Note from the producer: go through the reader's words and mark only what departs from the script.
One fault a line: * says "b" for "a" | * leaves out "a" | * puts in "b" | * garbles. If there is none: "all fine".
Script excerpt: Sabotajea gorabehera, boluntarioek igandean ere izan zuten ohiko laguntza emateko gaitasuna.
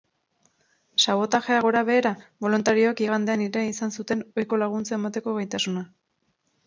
all fine